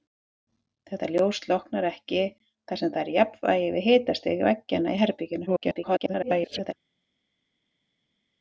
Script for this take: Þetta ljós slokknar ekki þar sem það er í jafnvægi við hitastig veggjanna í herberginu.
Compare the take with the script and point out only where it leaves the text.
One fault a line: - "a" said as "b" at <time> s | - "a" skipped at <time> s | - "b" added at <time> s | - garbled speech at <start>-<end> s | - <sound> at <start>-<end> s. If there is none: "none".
- garbled speech at 5.5-6.7 s